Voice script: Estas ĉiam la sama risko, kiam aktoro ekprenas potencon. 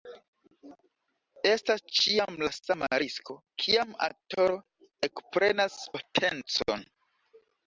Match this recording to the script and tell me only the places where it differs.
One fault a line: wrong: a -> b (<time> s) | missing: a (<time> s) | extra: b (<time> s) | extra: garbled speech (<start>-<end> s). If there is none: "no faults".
no faults